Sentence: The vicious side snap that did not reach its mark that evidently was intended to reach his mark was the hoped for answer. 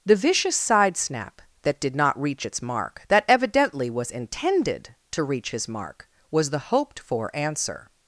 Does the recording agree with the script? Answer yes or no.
yes